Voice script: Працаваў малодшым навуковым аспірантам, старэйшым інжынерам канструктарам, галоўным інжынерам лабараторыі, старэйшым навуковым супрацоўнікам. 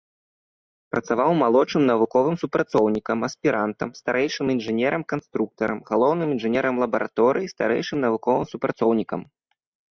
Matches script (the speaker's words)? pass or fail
fail